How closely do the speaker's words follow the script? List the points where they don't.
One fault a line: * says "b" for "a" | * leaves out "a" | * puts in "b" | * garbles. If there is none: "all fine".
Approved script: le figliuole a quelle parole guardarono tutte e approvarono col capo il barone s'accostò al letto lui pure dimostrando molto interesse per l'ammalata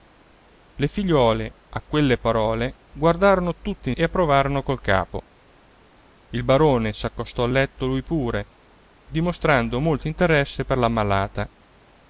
all fine